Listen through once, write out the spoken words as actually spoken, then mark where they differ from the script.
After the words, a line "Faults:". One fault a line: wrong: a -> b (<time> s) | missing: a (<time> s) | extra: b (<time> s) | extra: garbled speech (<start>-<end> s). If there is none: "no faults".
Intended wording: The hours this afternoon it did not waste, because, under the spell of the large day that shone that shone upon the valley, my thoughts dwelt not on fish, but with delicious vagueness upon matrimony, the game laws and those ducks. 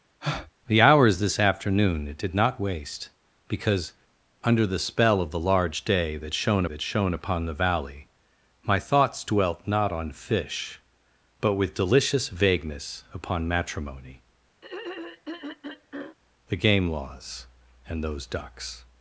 The hours this afternoon it did not waste, because, under the spell of the large day that shone that shone upon the valley, my thoughts dwelt not on fish, but with delicious vagueness upon matrimony, the game laws and those ducks.
Faults:
no faults